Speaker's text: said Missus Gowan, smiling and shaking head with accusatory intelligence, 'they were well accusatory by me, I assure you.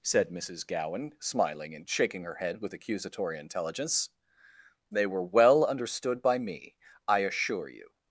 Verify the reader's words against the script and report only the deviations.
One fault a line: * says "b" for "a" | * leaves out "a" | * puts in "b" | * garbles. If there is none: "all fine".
* puts in "her"
* says "understood" for "accusatory"